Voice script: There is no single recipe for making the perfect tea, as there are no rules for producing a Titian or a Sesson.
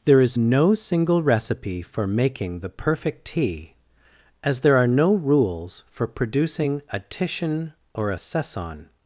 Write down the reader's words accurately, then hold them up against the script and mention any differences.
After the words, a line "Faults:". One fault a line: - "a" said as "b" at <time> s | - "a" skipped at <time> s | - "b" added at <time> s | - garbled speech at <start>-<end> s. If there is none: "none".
There is no single recipe for making the perfect tea, as there are no rules for producing a Titian or a Sesson.
Faults:
none